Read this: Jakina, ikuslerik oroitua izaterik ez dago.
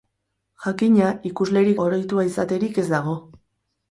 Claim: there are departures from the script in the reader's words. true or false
false